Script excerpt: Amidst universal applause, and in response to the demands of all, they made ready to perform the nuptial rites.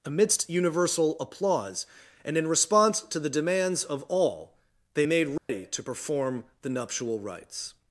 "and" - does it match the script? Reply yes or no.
yes